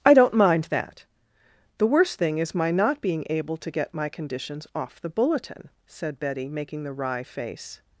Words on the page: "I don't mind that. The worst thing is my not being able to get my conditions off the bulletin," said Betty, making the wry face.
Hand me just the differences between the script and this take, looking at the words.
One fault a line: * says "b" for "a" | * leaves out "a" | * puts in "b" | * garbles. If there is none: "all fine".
all fine